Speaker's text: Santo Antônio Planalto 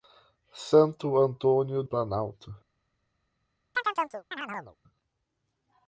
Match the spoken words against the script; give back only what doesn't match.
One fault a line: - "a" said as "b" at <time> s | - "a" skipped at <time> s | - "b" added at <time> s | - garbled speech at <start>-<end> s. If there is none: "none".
none